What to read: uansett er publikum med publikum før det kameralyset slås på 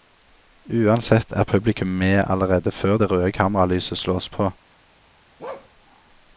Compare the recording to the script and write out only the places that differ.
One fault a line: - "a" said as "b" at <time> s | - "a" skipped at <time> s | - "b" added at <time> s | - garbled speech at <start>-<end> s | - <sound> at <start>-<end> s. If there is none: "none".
- "publikum" said as "allerede" at 2.3 s
- "røde" added at 3.1 s
- bark at 5.4-5.7 s